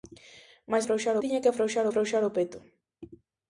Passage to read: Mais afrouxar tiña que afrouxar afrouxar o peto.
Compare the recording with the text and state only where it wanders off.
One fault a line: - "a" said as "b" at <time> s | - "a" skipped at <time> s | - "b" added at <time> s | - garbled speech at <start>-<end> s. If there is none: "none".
none